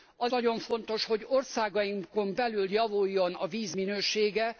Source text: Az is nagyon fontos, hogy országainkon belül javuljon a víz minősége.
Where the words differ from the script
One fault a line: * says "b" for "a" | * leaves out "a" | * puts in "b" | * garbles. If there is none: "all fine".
* leaves out "is"